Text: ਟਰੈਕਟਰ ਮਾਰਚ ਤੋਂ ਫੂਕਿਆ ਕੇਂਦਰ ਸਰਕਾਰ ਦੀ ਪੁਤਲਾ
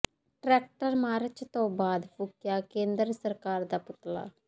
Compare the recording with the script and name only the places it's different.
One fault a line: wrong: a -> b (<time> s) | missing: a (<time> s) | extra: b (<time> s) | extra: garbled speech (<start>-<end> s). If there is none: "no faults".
extra: ਬਾਅਦ (1.7 s)
wrong: ਦੀ -> ਦਾ (3.7 s)